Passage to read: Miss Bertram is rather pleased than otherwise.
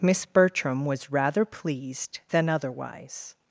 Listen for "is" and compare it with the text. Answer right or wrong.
wrong